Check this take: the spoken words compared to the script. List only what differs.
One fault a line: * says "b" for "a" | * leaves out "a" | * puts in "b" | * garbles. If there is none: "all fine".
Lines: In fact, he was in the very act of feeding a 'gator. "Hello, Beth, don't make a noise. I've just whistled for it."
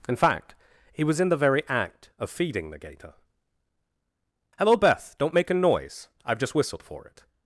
* says "the" for "a"